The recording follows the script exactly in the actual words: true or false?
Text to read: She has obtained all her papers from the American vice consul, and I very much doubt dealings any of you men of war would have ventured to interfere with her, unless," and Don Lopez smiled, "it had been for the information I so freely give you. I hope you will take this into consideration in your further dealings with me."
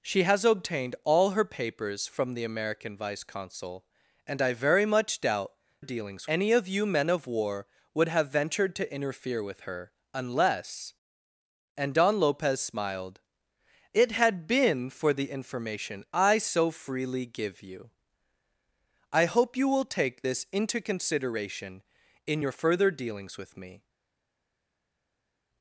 true